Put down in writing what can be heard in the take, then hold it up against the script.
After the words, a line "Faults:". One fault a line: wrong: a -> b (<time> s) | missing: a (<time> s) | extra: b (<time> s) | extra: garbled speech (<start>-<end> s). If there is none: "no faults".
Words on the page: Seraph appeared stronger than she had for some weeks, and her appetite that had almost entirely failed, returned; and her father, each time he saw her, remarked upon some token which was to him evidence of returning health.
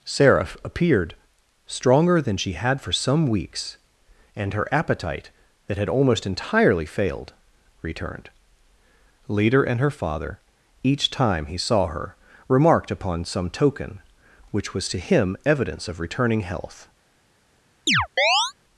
Seraph appeared stronger than she had for some weeks, and her appetite that had almost entirely failed, returned; leader and her father, each time he saw her, remarked upon some token which was to him evidence of returning health.
Faults:
extra: leader (9.3 s)